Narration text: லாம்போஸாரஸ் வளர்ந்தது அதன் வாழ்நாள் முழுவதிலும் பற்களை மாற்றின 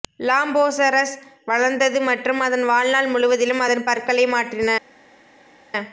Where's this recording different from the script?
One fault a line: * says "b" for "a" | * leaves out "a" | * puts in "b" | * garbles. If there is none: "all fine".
* puts in "மற்றும்"
* puts in "அதன்"